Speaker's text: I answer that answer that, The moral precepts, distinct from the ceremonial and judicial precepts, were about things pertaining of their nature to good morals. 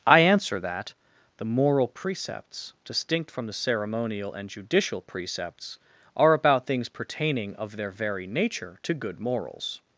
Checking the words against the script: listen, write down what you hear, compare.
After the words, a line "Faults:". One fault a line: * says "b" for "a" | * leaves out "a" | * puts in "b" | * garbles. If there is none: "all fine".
I answer that, The moral precepts, distinct from the ceremonial and judicial precepts, are about things pertaining of their very nature to good morals.
Faults:
* leaves out "answer that"
* says "are" for "were"
* puts in "very"